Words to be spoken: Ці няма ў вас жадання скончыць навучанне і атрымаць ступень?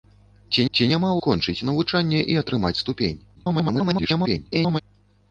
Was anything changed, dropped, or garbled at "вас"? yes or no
yes